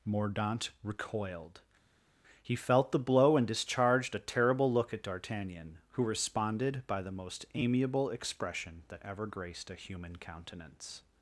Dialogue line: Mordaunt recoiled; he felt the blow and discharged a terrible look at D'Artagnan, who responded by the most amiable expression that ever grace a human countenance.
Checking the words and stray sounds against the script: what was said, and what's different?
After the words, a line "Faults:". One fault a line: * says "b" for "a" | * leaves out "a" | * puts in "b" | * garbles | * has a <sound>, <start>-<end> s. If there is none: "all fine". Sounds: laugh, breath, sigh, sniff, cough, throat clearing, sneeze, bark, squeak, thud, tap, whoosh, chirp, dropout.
Mordaunt recoiled; he felt the blow and discharged a terrible look at D'Artagnan, who responded by the most amiable expression that ever graced a human countenance.
Faults:
* says "graced" for "grace"